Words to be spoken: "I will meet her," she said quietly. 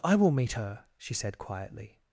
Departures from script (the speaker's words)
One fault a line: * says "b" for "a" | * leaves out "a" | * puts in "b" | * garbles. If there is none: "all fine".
all fine